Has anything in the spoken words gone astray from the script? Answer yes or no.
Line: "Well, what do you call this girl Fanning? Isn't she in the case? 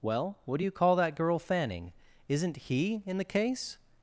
yes